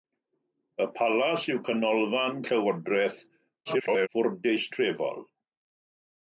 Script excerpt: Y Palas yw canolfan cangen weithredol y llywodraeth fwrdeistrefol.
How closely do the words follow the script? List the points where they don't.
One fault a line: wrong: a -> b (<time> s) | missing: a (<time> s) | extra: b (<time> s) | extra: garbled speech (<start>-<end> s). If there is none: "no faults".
missing: cangen weithredol (2.4 s)
extra: garbled speech (3.7-4.1 s)